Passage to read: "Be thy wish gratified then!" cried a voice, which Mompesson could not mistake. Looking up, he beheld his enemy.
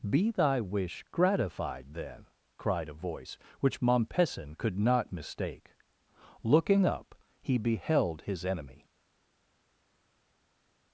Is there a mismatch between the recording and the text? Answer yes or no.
no